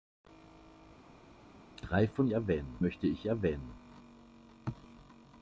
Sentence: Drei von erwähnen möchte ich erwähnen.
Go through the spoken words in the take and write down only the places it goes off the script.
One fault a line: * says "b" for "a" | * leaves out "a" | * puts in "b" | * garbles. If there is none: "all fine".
all fine